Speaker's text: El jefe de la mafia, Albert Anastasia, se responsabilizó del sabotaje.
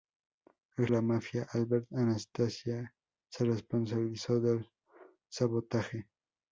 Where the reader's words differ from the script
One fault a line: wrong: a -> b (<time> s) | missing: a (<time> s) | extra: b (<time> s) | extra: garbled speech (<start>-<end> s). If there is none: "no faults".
missing: jefe de (0.9 s)